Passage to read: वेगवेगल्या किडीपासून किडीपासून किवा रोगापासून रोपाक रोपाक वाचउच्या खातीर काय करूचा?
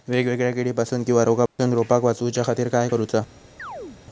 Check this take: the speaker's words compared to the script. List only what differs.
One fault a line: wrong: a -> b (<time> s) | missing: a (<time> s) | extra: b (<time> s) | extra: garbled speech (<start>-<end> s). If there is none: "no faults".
missing: किडीपासून (1.0 s)
missing: रोपाक (2.0 s)